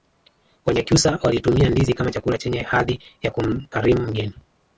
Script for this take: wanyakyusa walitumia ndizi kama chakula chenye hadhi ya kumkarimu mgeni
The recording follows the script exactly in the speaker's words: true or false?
true